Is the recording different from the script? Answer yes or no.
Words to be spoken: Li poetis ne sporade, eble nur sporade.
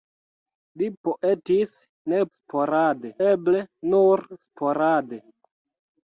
no